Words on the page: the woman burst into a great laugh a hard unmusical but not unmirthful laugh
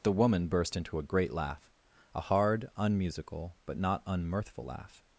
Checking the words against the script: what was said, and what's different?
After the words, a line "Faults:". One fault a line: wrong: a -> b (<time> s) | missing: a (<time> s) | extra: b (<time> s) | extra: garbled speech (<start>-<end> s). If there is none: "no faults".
the woman burst into a great laugh a hard unmusical but not unmirthful laugh
Faults:
no faults